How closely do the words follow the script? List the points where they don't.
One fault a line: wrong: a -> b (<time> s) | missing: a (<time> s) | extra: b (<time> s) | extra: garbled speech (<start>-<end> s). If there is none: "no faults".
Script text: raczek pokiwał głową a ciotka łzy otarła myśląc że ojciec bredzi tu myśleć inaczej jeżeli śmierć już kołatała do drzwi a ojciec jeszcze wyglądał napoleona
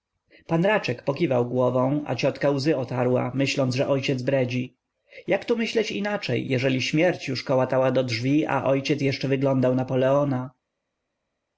extra: jak (5.3 s)